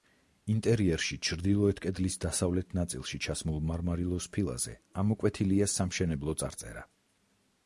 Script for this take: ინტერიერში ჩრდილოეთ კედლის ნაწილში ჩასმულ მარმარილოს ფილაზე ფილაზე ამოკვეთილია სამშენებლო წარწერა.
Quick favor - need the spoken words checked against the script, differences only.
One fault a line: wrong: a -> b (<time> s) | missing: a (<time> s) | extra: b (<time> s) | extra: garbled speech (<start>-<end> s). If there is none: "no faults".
extra: დასავლეთ (2.2 s)
missing: ფილაზე (4.8 s)